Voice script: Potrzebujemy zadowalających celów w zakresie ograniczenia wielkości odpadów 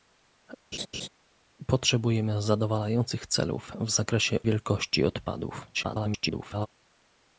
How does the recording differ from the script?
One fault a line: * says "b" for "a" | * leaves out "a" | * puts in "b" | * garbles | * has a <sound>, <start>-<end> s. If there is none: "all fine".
* has a laugh, 0.7-1.1 s
* leaves out "ograniczenia"
* garbles